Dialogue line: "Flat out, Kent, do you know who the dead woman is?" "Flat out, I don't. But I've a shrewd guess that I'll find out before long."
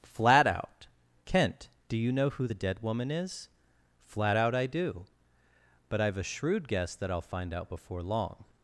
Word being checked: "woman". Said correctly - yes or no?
yes